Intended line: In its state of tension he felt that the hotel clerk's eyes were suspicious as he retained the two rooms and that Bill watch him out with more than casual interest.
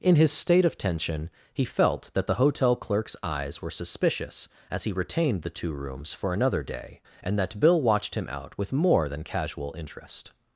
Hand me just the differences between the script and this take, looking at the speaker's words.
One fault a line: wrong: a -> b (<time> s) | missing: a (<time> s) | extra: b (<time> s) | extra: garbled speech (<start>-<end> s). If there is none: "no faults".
wrong: its -> his (0.1 s)
extra: for another day (6.1 s)
wrong: watch -> watched (7.8 s)